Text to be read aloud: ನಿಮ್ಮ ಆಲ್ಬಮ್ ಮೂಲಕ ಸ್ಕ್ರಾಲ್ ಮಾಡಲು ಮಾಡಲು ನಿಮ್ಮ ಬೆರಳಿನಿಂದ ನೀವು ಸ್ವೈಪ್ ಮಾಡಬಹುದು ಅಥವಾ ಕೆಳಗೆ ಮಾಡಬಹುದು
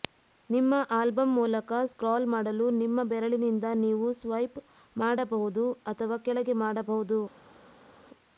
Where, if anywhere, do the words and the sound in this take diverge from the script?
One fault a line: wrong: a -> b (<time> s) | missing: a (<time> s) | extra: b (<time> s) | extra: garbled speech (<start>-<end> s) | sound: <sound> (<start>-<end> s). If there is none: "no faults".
missing: ಮಾಡಲು (2.7 s)